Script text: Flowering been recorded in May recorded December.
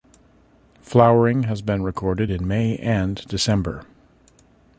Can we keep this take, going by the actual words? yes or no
no